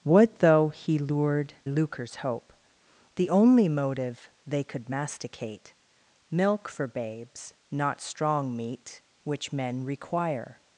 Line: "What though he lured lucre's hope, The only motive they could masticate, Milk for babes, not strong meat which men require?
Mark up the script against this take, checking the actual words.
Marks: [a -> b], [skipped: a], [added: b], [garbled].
"What though he lured lucre's hope, The only motive they could masticate, Milk for babes, not strong meat which men require?